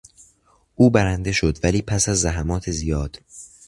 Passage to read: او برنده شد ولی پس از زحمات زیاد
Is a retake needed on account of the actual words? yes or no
no